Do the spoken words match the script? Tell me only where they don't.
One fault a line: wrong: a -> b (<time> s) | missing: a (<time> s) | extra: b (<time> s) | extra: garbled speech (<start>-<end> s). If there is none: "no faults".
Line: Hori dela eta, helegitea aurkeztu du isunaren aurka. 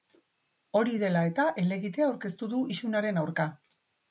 no faults